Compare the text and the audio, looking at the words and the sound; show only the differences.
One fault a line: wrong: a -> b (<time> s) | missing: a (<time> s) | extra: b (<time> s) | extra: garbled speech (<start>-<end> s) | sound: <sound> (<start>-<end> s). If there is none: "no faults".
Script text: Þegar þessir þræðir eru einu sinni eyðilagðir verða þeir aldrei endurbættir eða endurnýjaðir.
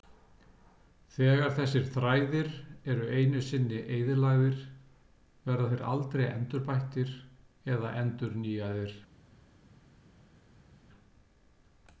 no faults